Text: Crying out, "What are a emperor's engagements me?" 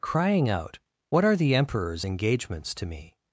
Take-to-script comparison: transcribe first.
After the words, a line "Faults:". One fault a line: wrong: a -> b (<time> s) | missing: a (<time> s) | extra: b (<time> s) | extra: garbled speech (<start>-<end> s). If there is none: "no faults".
Crying out, "What are the emperor's engagements to me?"
Faults:
wrong: a -> the (1.4 s)
extra: to (2.8 s)